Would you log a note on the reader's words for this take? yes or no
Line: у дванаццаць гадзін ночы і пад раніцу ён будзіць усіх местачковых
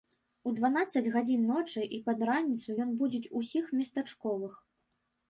no